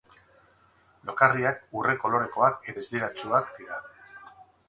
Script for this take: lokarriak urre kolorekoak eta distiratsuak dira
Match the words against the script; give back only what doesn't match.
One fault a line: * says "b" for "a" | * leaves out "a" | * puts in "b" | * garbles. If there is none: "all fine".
* leaves out "eta"